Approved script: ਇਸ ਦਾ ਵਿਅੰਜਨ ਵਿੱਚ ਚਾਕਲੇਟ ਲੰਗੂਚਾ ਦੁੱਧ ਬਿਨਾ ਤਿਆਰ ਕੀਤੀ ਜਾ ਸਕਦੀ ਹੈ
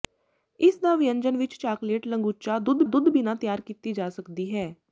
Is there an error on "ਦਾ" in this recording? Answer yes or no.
no